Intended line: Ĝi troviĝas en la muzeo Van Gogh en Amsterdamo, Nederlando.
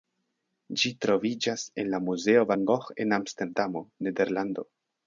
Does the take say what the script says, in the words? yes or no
yes